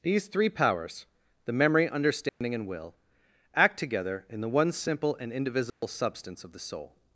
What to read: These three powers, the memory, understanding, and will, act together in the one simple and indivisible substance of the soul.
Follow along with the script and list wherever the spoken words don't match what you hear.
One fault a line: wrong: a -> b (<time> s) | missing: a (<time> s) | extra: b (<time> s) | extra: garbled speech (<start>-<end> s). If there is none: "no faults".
no faults